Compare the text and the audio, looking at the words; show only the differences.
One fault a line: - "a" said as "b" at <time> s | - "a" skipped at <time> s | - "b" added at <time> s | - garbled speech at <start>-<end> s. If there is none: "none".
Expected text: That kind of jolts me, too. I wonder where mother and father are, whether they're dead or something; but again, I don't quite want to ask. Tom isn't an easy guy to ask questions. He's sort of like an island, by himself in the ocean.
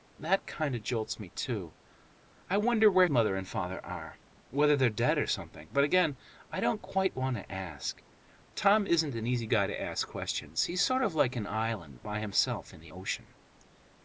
none